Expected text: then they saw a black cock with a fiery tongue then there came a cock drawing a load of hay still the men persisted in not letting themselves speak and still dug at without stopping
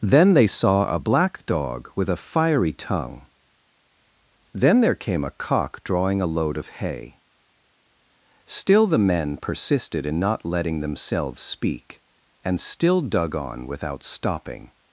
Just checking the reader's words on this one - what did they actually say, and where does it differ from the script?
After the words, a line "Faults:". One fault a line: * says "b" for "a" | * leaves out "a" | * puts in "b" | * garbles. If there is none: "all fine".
then they saw a black dog with a fiery tongue then there came a cock drawing a load of hay still the men persisted in not letting themselves speak and still dug on without stopping
Faults:
* says "dog" for "cock"
* says "on" for "at"